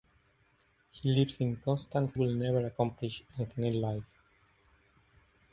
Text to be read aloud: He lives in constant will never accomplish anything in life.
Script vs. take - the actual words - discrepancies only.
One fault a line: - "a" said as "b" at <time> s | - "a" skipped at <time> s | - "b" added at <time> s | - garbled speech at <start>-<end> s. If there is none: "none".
none